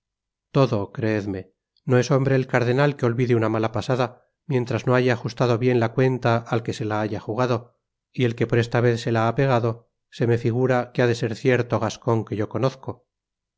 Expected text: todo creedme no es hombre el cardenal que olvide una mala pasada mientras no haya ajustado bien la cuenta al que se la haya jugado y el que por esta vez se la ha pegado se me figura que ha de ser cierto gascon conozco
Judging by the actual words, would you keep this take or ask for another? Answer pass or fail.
fail